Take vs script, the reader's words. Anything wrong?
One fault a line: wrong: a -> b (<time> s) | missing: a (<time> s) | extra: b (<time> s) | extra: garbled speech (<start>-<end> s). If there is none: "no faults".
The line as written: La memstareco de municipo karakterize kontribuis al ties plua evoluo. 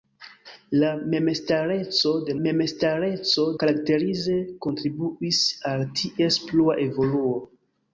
wrong: municipo -> memstareco (2.5 s)